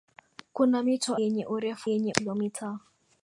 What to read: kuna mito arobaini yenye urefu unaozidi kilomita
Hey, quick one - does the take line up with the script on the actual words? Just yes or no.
no